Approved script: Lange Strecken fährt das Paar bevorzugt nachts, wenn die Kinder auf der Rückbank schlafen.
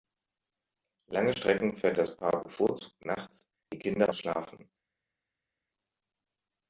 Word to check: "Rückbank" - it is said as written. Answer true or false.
false